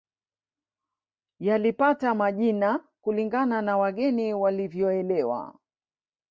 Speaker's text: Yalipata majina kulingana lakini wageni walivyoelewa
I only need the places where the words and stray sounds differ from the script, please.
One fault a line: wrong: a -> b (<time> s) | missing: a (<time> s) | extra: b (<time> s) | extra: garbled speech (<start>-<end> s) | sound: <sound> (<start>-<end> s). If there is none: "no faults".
wrong: lakini -> na (3.6 s)